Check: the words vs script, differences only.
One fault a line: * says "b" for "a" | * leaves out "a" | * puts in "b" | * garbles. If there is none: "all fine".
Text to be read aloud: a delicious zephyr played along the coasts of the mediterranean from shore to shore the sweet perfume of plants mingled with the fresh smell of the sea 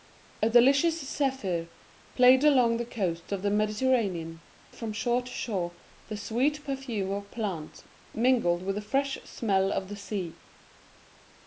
all fine